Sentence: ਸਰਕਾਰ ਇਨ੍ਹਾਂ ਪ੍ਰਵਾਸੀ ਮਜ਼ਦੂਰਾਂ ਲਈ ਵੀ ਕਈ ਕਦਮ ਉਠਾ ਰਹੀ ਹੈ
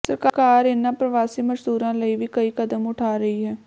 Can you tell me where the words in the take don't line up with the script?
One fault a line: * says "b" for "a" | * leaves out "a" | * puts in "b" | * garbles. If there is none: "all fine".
all fine